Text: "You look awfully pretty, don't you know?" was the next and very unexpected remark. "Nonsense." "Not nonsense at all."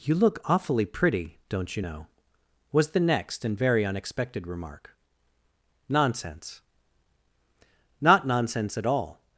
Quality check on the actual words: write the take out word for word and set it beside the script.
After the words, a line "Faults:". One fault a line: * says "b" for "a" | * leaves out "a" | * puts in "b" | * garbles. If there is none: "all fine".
"You look awfully pretty, don't you know?" was the next and very unexpected remark. "Nonsense." "Not nonsense at all."
Faults:
all fine